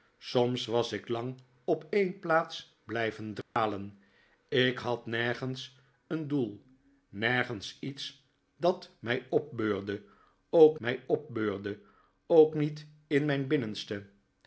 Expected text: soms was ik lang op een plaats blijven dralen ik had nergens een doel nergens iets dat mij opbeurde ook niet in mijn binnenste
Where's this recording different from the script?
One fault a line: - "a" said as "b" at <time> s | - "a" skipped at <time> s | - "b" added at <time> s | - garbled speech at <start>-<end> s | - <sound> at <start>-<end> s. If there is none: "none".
- dropout at 3.4-3.6 s
- "mij opbeurde ook" added at 10.8 s